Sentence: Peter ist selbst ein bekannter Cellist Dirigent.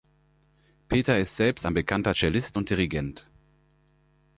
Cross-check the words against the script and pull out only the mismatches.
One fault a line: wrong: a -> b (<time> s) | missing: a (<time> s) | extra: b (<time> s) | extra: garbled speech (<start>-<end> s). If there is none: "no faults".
extra: und (2.6 s)